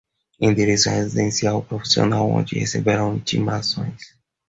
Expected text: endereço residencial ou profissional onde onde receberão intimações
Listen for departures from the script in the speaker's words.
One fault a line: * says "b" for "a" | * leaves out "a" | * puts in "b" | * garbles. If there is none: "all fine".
* leaves out "onde"